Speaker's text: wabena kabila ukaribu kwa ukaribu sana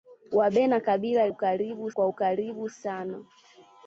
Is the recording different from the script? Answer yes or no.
no